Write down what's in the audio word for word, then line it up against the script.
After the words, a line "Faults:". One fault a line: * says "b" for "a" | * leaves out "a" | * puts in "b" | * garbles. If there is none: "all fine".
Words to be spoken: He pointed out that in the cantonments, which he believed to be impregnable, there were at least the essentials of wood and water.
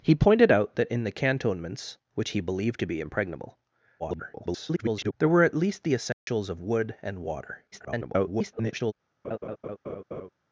He pointed out that in the cantonments, which he believed to be impregnable, [garbled] there were at least the essentials of wood and water. [garbled]
Faults:
* garbles
* garbles